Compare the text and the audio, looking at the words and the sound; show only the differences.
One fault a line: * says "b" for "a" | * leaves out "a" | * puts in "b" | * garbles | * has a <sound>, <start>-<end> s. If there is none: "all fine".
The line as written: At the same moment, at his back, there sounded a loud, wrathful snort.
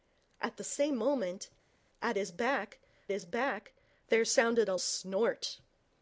* puts in "his back"
* leaves out "loud wrathful"